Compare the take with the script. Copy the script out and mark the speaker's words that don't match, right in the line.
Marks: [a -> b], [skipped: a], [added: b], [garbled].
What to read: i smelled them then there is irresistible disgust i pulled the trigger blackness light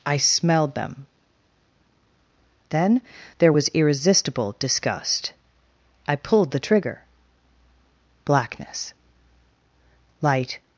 i smelled them then there [is -> was] irresistible disgust i pulled the trigger blackness light